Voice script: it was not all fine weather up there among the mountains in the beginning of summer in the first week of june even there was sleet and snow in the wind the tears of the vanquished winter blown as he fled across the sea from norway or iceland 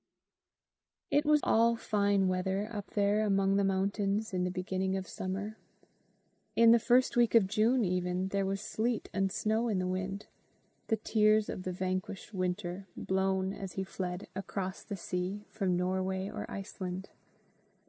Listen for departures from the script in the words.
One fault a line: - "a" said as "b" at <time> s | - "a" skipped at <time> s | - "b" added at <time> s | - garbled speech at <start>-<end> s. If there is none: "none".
- "not" skipped at 1.4 s